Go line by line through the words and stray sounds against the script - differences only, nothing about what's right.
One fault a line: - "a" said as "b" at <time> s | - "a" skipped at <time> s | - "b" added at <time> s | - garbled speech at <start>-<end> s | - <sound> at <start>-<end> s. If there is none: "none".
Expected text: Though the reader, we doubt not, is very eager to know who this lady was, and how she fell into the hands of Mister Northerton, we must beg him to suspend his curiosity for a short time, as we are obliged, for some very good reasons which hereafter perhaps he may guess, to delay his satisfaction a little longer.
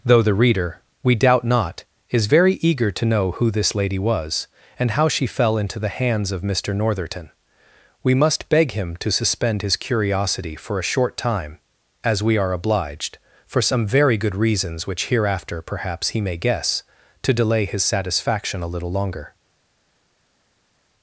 none